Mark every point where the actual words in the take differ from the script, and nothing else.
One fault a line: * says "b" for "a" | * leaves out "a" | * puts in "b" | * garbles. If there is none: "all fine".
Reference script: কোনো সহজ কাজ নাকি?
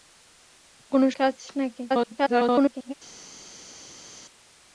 * leaves out "সহজ"
* garbles